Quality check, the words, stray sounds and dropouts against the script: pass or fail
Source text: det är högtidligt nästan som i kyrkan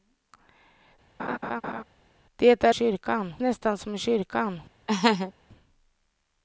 fail